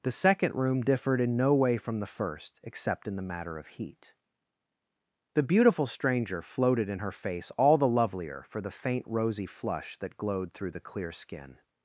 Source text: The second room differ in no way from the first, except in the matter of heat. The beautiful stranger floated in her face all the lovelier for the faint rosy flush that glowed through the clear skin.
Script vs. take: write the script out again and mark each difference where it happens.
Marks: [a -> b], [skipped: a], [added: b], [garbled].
The second room [differ -> differed] in no way from the first, except in the matter of heat. The beautiful stranger floated in her face all the lovelier for the faint rosy flush that glowed through the clear skin.